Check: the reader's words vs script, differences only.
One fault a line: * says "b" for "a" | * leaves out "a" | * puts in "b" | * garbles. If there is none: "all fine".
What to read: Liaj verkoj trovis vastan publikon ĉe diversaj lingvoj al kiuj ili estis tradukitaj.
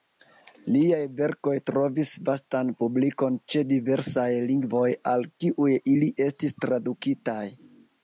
all fine